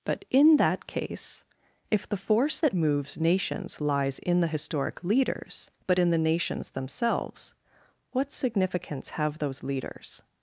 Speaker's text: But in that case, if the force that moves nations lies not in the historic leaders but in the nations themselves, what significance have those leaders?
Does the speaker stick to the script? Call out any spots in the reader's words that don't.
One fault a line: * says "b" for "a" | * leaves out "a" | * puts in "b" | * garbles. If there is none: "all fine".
* leaves out "not"